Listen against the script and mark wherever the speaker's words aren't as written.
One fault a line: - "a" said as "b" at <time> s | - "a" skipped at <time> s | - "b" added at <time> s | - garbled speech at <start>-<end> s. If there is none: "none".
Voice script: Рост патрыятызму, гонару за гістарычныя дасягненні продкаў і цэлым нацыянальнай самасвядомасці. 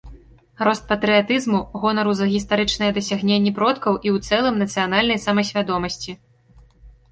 - "ў" added at 4.2 s